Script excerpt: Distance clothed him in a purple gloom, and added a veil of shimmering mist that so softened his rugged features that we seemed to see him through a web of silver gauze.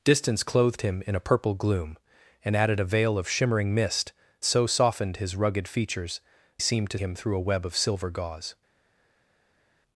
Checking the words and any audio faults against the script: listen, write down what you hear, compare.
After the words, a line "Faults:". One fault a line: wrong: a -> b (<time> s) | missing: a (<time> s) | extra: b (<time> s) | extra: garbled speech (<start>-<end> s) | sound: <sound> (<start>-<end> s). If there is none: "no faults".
Distance clothed him in a purple gloom, and added a veil of shimmering mist so softened his rugged features seemed to him through a web of silver gauze.
Faults:
missing: that (4.1 s)
missing: that we (6.2 s)
missing: see (7.0 s)